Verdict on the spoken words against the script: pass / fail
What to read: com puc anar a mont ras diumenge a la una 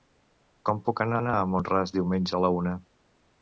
fail